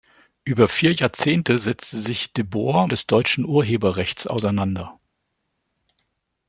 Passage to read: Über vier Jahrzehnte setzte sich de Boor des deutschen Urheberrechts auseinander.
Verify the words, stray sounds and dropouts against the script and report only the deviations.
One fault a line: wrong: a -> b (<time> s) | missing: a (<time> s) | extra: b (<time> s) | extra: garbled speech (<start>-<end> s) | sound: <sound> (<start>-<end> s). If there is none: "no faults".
no faults